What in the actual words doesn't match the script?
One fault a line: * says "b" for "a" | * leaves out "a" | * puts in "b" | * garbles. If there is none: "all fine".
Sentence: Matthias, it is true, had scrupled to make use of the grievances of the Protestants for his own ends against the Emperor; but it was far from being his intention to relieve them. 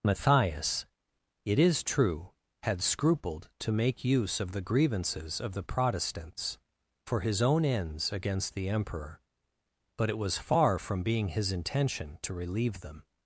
all fine